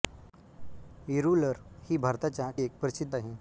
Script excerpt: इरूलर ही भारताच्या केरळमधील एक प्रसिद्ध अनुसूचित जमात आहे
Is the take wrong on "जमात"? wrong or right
wrong